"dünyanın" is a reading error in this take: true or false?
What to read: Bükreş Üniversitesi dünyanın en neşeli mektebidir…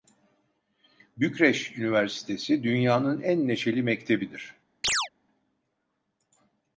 false